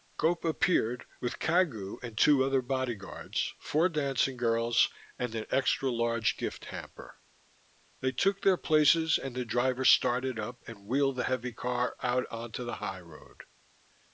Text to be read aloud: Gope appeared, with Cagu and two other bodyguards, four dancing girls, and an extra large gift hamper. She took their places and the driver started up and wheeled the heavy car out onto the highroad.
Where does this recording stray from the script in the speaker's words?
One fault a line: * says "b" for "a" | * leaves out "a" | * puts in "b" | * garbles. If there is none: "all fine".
* says "They" for "She"